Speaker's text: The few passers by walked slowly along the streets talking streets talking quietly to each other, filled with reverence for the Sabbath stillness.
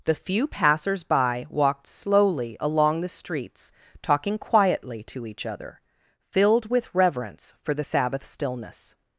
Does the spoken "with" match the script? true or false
true